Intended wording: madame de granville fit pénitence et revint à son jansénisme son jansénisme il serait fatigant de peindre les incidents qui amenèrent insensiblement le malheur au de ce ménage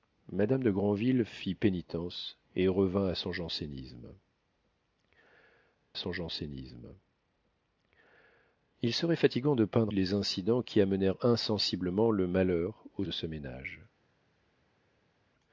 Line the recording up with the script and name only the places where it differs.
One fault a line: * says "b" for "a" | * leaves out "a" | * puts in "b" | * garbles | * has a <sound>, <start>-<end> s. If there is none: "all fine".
all fine